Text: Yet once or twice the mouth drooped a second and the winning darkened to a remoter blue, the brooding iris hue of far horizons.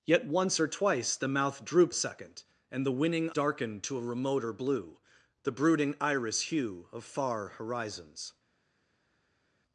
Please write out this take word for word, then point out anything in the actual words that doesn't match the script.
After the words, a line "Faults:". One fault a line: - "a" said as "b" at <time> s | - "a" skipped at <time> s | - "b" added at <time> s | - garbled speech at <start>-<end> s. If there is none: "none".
Yet once or twice the mouth drooped a second and the winning darkened to a remoter blue, the brooding iris hue of far horizons.
Faults:
none